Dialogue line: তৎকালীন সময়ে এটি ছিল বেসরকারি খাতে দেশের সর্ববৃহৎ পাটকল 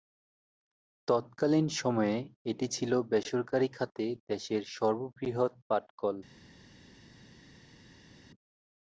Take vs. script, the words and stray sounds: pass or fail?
pass